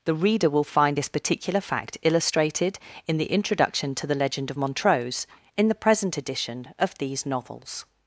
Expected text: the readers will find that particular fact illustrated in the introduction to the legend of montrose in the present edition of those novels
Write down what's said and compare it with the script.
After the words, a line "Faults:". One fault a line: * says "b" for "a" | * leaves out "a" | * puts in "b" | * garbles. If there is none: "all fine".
the reader will find this particular fact illustrated in the introduction to the legend of montrose in the present edition of these novels
Faults:
* says "reader" for "readers"
* says "this" for "that"
* says "these" for "those"